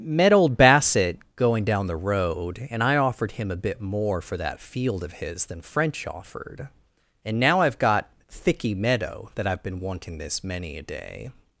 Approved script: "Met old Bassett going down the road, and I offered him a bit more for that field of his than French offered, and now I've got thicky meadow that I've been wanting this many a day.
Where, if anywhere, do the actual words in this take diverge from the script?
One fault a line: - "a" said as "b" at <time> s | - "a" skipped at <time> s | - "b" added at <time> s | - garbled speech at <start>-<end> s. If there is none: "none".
none